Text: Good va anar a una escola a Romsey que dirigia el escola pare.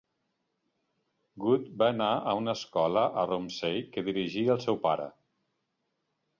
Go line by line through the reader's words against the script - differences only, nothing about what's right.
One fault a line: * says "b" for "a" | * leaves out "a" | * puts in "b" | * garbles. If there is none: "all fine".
* says "seu" for "escola"